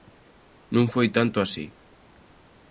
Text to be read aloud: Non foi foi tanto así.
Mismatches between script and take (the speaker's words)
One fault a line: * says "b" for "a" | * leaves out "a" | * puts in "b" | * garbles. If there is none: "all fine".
* leaves out "foi"